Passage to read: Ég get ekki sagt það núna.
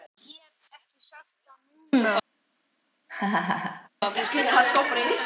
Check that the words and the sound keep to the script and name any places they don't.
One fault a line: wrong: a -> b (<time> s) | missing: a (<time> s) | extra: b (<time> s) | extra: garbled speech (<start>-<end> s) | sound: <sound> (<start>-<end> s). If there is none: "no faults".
sound: laugh (3.1-3.9 s)